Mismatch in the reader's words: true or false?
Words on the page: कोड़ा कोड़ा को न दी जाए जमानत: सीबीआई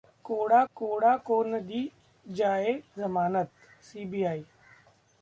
false